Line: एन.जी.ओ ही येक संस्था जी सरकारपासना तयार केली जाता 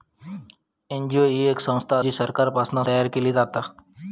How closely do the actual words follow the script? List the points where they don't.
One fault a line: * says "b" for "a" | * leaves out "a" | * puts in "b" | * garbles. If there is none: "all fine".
all fine